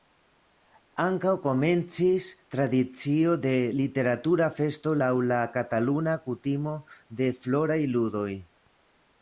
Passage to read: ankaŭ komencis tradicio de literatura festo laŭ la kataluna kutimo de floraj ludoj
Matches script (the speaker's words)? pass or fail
pass